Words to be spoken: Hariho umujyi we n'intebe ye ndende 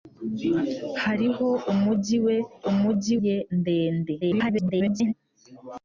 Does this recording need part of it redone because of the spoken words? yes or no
yes